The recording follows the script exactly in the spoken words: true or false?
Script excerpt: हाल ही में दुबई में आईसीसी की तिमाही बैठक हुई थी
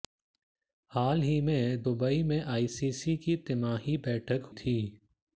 false